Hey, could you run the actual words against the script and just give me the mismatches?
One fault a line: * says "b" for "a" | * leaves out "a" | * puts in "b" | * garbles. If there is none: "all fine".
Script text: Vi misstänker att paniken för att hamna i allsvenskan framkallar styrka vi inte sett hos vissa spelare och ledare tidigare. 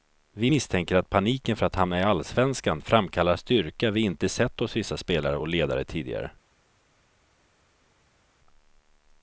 all fine